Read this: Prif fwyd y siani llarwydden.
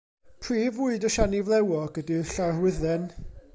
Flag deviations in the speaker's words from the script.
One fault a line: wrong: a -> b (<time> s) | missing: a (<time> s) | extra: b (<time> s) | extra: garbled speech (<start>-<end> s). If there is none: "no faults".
extra: flewog ydy'r (1.5 s)